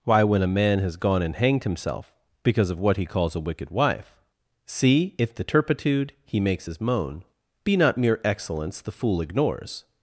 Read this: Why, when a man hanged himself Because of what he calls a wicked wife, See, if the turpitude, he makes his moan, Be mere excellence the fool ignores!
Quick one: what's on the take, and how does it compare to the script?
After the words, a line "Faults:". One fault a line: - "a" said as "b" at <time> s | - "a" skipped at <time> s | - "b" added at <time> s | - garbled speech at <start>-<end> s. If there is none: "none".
Why, when a man has gone and hanged himself Because of what he calls a wicked wife, See, if the turpitude, he makes his moan, Be not mere excellence the fool ignores!
Faults:
- "has gone and" added at 0.8 s
- "not" added at 7.7 s